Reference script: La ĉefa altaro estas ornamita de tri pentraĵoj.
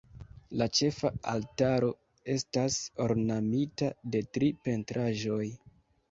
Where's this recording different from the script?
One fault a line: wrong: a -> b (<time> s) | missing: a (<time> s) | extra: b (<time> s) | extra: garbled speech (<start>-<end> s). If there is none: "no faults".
no faults